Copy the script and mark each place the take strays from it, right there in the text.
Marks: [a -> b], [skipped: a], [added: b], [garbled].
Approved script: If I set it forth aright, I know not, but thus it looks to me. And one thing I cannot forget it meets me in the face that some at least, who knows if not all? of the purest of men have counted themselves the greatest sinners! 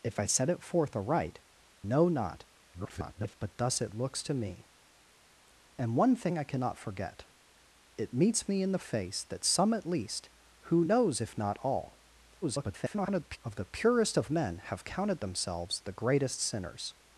If I set it forth aright, [skipped: I] know not, [garbled] but thus it looks to me. And one thing I cannot forget it meets me in the face that some at least, who knows if not all? [garbled] of the purest of men have counted themselves the greatest sinners!